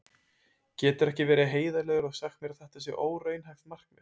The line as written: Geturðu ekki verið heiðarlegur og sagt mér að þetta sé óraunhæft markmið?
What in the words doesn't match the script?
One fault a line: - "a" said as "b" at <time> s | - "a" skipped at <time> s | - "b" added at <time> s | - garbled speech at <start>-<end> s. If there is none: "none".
none